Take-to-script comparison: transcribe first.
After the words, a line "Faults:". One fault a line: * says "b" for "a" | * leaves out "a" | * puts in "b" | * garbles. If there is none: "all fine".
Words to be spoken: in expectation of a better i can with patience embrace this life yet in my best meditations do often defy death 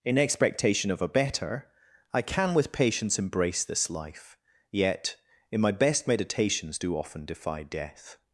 in expectation of a better i can with patience embrace this life yet in my best meditations do often defy death
Faults:
all fine